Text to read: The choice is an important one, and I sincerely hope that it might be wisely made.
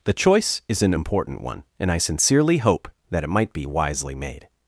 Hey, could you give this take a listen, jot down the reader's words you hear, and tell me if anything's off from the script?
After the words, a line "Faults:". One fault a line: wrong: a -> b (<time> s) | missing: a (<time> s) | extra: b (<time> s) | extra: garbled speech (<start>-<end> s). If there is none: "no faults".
The choice is an important one, and I sincerely hope that it might be wisely made.
Faults:
no faults